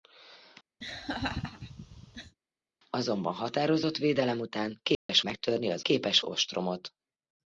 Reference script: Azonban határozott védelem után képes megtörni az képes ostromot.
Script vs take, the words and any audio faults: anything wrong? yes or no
yes